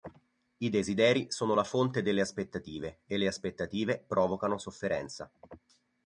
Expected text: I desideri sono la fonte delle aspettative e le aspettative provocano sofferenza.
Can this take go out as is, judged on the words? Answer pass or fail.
pass